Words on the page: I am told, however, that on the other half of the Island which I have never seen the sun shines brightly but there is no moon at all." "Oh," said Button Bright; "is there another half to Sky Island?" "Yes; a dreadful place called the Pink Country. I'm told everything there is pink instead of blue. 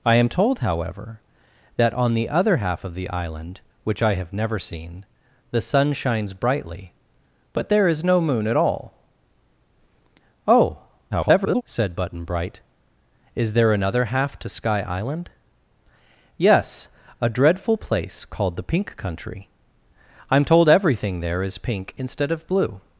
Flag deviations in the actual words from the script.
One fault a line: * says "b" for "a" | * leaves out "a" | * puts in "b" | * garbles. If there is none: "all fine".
* garbles